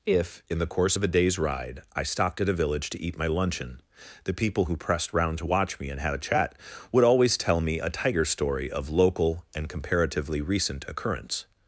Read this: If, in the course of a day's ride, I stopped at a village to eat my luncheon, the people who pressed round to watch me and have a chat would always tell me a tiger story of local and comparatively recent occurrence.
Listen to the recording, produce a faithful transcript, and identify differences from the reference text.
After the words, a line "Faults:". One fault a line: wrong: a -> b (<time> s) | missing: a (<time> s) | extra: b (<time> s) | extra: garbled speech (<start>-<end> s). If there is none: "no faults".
If, in the course of a day's ride, I stopped at a village to eat my luncheon, the people who pressed round to watch me and had a chat would always tell me a tiger story of local and comparatively recent occurrence.
Faults:
wrong: have -> had (6.0 s)